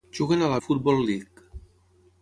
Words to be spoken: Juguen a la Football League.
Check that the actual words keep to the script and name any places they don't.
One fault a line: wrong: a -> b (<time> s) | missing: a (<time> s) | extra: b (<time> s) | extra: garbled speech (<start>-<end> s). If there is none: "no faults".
no faults